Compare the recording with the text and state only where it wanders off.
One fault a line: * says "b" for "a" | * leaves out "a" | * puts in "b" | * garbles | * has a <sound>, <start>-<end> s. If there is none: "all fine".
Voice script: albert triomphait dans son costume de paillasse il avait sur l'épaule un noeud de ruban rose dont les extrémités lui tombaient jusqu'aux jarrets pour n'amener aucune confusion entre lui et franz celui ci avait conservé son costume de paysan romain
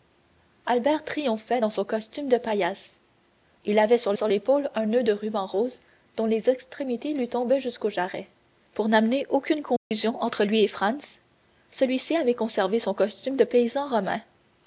* puts in "sur"
* has a dropout, 9.8-9.9 s